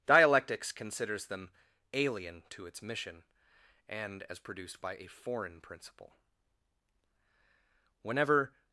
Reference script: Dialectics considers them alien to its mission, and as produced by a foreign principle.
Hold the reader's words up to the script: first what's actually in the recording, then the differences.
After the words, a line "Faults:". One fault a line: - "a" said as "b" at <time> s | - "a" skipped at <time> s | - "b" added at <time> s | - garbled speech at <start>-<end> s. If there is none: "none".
Dialectics considers them alien to its mission, and as produced by a foreign principle. Whenever
Faults:
- "Whenever" added at 8.0 s